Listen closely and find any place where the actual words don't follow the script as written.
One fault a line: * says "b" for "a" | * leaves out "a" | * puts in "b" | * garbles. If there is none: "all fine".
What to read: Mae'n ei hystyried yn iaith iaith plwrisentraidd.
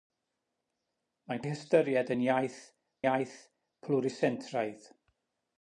all fine